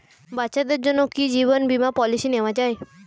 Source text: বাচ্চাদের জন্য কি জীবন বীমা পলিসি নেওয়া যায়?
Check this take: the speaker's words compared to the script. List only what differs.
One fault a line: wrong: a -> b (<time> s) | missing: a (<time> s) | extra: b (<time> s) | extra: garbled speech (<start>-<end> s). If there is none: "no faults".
no faults